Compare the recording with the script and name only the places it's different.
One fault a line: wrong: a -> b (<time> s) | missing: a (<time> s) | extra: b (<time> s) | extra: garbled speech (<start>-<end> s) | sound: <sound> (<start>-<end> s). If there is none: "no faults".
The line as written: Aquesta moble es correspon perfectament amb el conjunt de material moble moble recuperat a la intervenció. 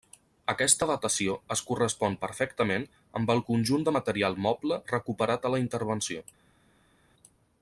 wrong: moble -> datació (0.9 s)
missing: moble (4.8 s)